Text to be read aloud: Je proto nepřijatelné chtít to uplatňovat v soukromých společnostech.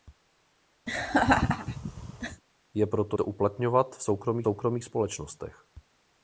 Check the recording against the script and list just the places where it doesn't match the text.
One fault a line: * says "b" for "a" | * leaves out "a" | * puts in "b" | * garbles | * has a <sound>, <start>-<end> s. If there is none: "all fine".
* has a laugh, 0.9-2.4 s
* leaves out "nepřijatelné chtít"
* puts in "soukromých"